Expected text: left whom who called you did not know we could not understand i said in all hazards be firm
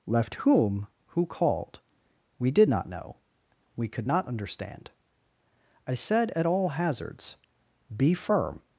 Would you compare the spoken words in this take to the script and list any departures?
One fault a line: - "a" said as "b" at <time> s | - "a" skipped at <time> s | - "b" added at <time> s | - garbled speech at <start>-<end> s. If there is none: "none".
- "you" said as "we" at 2.4 s
- "in" said as "at" at 6.3 s